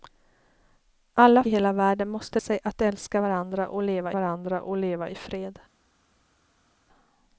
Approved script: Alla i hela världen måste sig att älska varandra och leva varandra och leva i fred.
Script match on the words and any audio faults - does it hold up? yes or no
yes